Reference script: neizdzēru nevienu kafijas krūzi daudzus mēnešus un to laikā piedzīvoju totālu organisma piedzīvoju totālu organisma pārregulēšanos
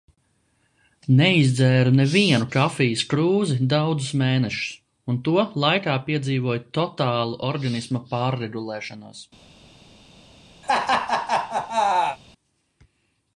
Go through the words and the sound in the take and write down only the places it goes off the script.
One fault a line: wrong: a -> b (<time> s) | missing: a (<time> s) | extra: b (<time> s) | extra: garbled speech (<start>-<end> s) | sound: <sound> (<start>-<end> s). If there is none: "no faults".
missing: piedzīvoju totālu organisma (8.0 s)
sound: laugh (10.6-12.2 s)